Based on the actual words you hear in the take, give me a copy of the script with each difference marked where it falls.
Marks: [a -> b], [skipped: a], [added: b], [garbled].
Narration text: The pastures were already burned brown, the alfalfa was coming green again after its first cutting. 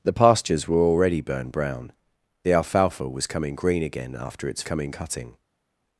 The pastures were already burned brown, the alfalfa was coming green again after its [first -> coming] cutting.